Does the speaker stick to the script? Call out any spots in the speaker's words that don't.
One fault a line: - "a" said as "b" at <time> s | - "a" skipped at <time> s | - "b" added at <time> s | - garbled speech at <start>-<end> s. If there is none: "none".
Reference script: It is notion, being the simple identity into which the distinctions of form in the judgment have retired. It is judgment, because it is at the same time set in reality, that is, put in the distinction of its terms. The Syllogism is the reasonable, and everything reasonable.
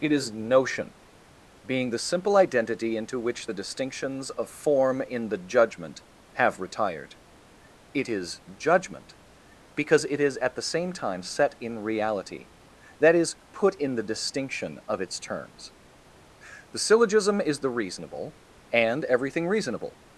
none